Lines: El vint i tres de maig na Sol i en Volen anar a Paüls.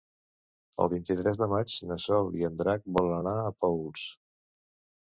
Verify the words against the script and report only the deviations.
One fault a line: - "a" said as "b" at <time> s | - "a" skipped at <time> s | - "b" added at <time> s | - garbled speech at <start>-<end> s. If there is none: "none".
- "Drac" added at 2.6 s